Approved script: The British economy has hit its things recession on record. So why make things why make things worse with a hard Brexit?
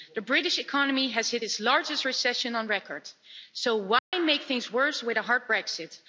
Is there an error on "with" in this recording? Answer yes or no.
no